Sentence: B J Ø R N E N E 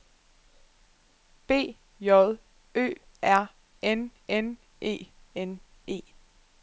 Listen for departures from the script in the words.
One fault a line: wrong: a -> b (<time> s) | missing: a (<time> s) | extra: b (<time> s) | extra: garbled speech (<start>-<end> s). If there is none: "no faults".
extra: N (4.3 s)